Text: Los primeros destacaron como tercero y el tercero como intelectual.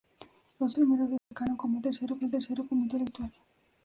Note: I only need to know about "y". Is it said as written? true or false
true